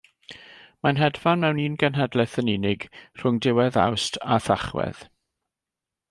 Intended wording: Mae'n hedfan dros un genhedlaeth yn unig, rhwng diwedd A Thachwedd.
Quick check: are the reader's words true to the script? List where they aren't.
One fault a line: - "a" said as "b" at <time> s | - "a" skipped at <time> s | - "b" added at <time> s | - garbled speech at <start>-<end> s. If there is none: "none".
- "dros" said as "mewn" at 1.4 s
- "Awst" added at 3.9 s